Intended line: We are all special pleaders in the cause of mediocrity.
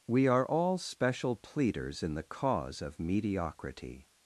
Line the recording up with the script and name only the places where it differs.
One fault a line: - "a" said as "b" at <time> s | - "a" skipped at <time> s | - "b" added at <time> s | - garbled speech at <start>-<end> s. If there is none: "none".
none